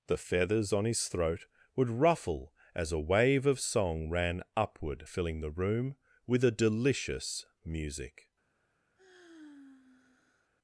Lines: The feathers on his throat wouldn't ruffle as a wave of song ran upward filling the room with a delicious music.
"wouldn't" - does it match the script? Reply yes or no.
no